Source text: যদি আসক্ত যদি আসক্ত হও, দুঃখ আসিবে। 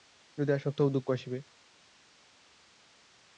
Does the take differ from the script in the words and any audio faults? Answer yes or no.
yes